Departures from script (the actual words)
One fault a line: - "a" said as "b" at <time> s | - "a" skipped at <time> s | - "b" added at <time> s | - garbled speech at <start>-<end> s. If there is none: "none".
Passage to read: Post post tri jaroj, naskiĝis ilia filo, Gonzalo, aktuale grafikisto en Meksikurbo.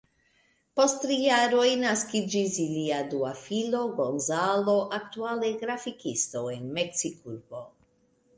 - "post" skipped at 0.9 s
- "dua" added at 3.1 s